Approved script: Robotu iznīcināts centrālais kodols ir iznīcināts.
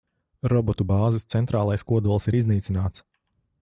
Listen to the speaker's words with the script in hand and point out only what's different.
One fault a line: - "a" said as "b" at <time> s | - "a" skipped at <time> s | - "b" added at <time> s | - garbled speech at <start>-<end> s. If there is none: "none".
- "iznīcināts" said as "bāzes" at 0.9 s